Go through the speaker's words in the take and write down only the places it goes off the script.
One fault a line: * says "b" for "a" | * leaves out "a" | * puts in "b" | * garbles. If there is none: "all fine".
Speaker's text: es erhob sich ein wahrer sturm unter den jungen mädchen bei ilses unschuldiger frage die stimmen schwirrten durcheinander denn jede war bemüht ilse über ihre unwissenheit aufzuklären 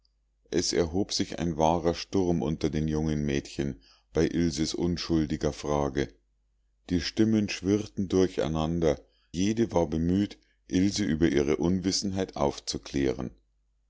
* leaves out "denn"